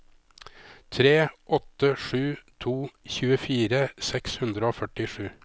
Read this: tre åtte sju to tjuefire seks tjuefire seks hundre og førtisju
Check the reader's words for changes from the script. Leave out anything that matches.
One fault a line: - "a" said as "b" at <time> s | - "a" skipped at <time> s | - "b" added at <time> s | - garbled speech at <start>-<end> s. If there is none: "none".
- "tjuefire seks" skipped at 4.4 s